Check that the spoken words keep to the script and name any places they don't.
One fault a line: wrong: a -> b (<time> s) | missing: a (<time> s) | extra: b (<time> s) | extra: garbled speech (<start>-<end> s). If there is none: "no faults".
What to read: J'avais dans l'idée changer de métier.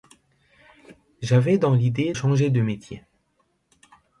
no faults